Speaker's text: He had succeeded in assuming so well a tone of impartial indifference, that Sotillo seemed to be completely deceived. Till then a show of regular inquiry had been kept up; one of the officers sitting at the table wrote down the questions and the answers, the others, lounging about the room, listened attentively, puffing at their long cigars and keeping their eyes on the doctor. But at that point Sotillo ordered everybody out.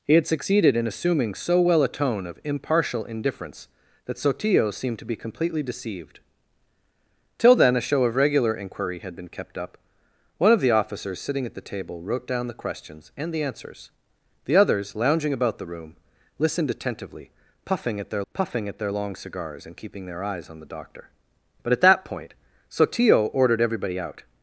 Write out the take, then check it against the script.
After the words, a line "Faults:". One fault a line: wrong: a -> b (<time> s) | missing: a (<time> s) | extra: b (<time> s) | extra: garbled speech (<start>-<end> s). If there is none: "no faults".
He had succeeded in assuming so well a tone of impartial indifference, that Sotillo seemed to be completely deceived. Till then a show of regular inquiry had been kept up; one of the officers sitting at the table wrote down the questions and the answers, the others, lounging about the room, listened attentively, puffing at their puffing at their long cigars and keeping their eyes on the doctor. But at that point Sotillo ordered everybody out.
Faults:
extra: puffing at their (18.3 s)